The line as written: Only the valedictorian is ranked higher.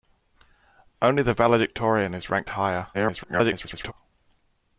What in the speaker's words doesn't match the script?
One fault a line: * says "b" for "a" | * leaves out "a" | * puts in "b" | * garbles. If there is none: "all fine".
* garbles